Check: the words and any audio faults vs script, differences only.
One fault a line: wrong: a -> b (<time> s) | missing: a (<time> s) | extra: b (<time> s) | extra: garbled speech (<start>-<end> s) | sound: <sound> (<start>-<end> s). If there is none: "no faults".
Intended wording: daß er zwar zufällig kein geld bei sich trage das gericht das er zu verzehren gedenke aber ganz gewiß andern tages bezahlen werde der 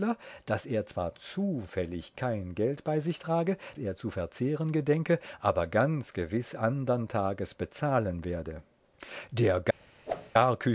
missing: das gericht das (3.6 s)
sound: whoosh (10.1-10.3 s)